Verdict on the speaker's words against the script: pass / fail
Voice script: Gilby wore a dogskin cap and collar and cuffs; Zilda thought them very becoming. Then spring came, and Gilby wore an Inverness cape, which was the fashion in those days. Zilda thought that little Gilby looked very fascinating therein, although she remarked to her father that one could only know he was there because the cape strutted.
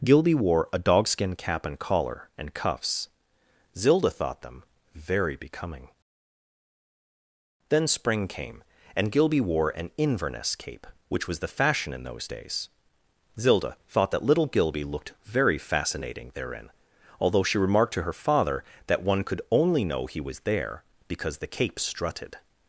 pass